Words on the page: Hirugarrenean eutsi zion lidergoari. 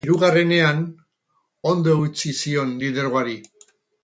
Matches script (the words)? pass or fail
fail